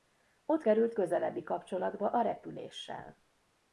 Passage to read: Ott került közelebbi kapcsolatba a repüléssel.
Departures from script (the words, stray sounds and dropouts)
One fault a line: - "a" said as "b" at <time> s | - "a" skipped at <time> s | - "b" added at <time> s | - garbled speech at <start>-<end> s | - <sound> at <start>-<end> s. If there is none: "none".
none